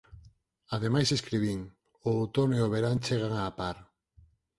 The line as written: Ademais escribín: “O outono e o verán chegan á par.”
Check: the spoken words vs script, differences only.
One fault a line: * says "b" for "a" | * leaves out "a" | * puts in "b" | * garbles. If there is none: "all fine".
all fine